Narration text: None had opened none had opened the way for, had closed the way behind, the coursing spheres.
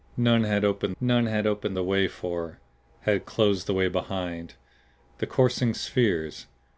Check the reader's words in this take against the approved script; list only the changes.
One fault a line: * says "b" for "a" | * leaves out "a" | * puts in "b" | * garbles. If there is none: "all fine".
all fine